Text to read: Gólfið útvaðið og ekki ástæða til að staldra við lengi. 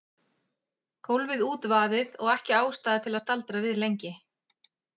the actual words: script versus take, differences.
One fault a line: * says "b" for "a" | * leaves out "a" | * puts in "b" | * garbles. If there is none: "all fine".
all fine